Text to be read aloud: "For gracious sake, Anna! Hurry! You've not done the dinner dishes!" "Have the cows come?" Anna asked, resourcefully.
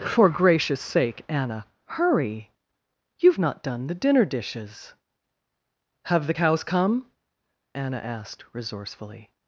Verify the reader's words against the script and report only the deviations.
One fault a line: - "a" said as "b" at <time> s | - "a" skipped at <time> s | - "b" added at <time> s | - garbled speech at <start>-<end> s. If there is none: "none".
none